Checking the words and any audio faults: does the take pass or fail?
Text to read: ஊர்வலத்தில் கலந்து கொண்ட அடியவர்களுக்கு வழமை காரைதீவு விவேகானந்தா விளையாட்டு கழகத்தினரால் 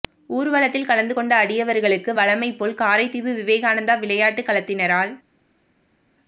fail